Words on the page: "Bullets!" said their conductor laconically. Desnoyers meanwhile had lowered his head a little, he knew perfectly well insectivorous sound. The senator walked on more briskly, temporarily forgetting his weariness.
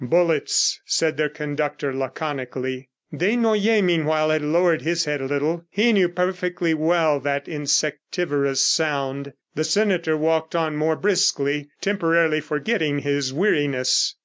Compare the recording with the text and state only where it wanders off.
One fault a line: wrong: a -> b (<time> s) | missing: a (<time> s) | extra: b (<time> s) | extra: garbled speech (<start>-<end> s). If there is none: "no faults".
extra: that (7.2 s)